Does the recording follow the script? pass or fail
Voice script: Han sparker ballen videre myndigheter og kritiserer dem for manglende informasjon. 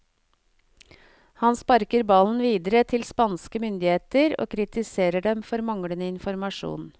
fail